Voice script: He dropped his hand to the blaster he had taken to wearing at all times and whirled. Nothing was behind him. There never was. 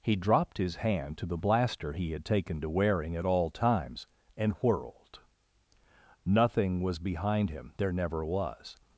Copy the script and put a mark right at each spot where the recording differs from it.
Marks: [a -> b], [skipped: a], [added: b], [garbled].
He dropped his hand to the blaster he had taken to wearing at all times and whirled. Nothing was behind him. There never was.